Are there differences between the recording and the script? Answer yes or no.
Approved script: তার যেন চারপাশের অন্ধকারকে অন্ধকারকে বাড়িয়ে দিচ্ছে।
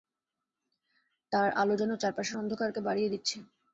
yes